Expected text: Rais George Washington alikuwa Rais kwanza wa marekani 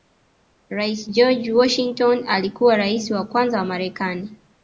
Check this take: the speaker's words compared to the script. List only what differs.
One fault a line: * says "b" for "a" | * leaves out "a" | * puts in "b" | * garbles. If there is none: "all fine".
* puts in "wa"